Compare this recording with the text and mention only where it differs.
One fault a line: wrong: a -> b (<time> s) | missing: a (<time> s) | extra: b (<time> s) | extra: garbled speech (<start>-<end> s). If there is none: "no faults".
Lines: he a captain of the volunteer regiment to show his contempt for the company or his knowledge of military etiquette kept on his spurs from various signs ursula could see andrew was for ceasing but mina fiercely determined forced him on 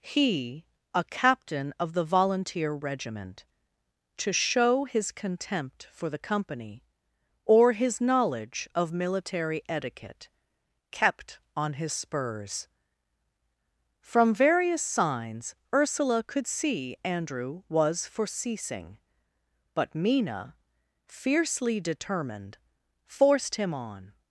no faults